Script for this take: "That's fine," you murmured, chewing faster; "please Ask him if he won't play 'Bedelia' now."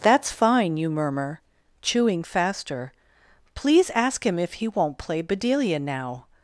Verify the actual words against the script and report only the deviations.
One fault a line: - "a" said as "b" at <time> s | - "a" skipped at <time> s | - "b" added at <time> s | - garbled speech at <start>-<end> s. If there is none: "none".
- "murmured" said as "murmur" at 0.9 s